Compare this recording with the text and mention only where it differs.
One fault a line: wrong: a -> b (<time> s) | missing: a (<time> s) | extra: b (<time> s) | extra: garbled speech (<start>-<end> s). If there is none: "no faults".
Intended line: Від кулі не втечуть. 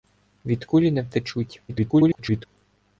extra: garbled speech (1.7-2.5 s)